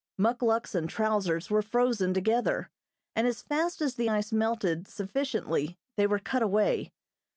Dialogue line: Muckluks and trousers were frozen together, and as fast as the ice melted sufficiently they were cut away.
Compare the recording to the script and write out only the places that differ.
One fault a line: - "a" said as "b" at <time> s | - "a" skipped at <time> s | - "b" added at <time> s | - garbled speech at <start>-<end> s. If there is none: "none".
none